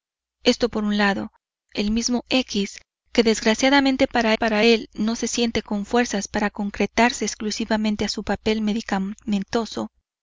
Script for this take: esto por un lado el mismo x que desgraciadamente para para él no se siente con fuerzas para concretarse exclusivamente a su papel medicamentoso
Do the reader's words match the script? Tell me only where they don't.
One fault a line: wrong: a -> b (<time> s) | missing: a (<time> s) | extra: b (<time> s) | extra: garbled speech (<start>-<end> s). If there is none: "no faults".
no faults